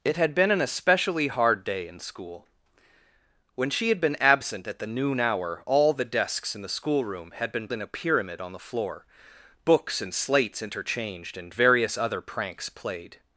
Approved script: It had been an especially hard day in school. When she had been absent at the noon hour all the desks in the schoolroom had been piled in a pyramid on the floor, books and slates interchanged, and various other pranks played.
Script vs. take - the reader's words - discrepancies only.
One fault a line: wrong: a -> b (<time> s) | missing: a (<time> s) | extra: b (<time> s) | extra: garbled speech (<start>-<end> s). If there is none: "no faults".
missing: piled (7.7 s)